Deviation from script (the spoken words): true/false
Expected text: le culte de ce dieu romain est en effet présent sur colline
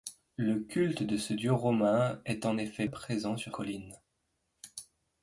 false